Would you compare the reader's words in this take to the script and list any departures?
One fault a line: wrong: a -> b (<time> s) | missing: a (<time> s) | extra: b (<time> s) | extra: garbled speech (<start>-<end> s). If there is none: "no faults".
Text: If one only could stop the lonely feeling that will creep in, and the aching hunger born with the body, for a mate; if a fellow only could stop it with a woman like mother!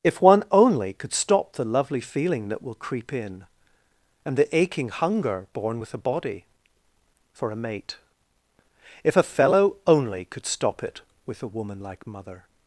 wrong: lonely -> lovely (1.6 s)
wrong: the -> a (5.9 s)